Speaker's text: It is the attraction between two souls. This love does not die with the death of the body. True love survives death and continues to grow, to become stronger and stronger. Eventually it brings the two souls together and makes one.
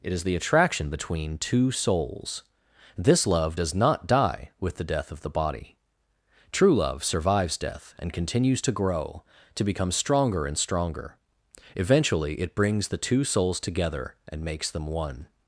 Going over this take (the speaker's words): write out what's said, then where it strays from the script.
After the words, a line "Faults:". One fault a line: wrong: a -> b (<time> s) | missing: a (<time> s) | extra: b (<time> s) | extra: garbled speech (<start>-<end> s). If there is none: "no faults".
It is the attraction between two souls. This love does not die with the death of the body. True love survives death and continues to grow, to become stronger and stronger. Eventually it brings the two souls together and makes them one.
Faults:
extra: them (14.7 s)